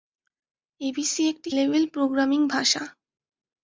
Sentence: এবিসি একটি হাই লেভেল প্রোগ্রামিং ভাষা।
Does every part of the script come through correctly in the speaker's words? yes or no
no